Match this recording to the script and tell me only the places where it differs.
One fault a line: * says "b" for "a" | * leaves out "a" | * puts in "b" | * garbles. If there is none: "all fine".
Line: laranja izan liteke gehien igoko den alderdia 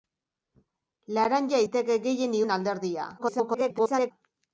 * leaves out "izan"
* leaves out "igoko"
* garbles